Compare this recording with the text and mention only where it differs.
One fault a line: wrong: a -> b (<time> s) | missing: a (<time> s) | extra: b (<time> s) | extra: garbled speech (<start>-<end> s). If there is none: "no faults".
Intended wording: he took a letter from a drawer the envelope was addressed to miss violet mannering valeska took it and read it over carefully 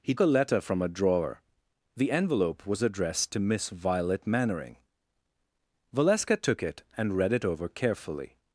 missing: took (0.1 s)